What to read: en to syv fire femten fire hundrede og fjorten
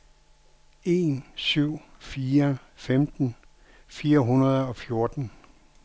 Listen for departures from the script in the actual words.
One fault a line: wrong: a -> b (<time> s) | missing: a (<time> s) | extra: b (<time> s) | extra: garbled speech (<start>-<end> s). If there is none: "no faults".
missing: to (1.2 s)